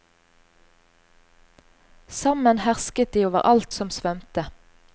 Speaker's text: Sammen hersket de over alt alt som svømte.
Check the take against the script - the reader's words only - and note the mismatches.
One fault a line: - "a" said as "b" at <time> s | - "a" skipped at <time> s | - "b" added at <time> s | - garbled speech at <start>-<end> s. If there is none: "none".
- "alt" skipped at 3.8 s